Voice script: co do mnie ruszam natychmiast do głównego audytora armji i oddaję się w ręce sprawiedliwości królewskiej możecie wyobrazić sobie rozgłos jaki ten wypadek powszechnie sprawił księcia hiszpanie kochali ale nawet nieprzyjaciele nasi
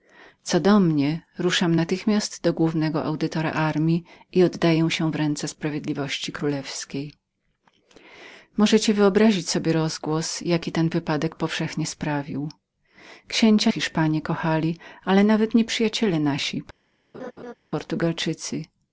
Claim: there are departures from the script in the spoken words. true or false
false